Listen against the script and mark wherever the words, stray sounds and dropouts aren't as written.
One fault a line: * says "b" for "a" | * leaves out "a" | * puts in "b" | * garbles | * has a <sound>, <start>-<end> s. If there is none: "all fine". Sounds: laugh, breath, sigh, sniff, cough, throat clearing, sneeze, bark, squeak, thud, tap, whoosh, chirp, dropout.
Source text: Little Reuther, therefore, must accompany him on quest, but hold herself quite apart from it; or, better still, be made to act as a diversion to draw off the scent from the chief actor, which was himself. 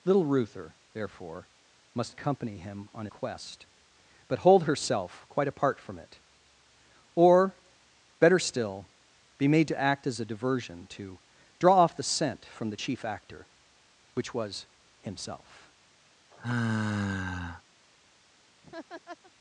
* has a sigh, 16.3-17.6 s
* has a laugh, 18.6-19.3 s